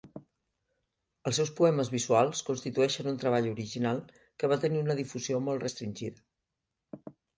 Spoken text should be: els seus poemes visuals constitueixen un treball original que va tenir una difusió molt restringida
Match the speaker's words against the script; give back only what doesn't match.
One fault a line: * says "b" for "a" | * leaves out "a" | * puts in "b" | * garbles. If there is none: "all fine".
all fine